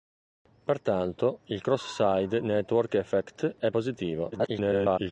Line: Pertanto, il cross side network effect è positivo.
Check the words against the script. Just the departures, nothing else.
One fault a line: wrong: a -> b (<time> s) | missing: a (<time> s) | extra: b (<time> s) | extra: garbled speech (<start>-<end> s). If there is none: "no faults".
extra: garbled speech (4.3-5.1 s)